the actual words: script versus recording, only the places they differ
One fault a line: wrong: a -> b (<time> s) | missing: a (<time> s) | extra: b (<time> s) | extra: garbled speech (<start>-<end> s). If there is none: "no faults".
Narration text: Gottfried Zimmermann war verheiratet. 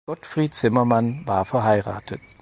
no faults